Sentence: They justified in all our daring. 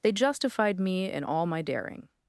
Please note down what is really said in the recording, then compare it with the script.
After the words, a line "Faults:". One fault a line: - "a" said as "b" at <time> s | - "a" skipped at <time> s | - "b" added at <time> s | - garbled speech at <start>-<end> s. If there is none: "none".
They justified me in all my daring.
Faults:
- "me" added at 0.8 s
- "our" said as "my" at 1.5 s